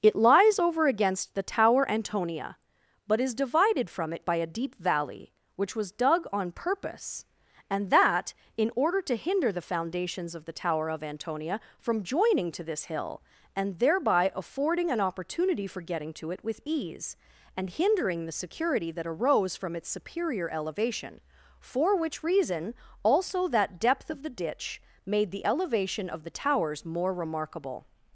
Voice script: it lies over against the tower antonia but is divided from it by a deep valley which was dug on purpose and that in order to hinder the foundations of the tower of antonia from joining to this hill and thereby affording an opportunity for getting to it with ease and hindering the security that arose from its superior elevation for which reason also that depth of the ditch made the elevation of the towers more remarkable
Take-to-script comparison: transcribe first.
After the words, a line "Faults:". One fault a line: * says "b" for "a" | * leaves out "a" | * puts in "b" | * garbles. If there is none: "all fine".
it lies over against the tower antonia but is divided from it by a deep valley which was dug on purpose and that in order to hinder the foundations of the tower of antonia from joining to this hill and thereby affording an opportunity for getting to it with ease and hindering the security that arose from its superior elevation for which reason also that depth of the ditch made the elevation of the towers more remarkable
Faults:
all fine